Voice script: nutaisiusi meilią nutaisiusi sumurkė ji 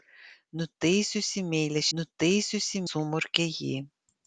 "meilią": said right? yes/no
yes